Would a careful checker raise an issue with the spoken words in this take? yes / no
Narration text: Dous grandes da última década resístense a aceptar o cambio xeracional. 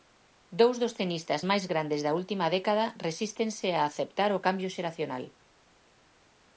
yes